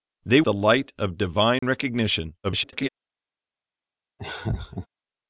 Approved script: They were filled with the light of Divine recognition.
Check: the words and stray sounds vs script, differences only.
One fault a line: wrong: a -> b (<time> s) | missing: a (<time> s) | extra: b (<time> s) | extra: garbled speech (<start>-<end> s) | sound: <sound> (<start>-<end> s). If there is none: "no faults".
missing: were filled with (0.4 s)
sound: dropout (1.6-1.6 s)
extra: garbled speech (2.4-2.9 s)
sound: laugh (4.2-4.9 s)